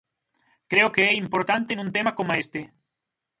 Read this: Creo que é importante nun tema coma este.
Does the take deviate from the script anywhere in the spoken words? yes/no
no